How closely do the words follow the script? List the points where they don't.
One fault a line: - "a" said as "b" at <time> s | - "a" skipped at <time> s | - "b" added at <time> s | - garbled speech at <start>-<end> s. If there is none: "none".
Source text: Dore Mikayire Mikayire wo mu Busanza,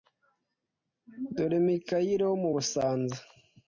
- "Mikayire" skipped at 2.2 s